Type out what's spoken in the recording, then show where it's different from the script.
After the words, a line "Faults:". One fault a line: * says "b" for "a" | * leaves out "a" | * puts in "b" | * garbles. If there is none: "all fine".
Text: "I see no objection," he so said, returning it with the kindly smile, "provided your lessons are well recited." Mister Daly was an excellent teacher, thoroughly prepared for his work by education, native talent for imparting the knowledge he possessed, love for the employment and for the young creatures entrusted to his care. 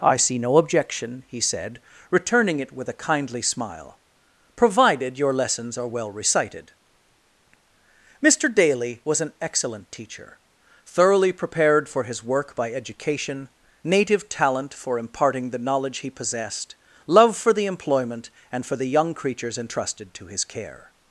"I see no objection," he said, returning it with a kindly smile, "provided your lessons are well recited." Mister Daly was an excellent teacher, thoroughly prepared for his work by education, native talent for imparting the knowledge he possessed, love for the employment and for the young creatures entrusted to his care.
Faults:
* leaves out "so"
* says "a" for "the"